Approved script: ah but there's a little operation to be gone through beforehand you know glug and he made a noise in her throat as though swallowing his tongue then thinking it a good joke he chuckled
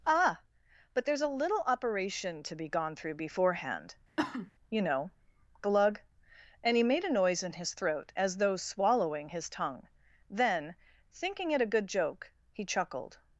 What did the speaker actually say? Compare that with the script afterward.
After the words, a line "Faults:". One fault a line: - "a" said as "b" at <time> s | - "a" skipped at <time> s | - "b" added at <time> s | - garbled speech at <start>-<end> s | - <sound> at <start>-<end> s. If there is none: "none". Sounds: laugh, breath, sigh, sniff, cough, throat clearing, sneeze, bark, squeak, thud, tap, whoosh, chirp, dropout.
ah but there's a little operation to be gone through beforehand you know glug and he made a noise in his throat as though swallowing his tongue then thinking it a good joke he chuckled
Faults:
- cough at 4.2-4.5 s
- "her" said as "his" at 7.5 s